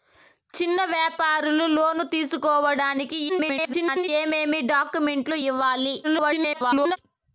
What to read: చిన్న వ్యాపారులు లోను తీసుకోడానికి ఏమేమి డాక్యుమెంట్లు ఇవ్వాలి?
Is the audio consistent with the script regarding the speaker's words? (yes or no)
no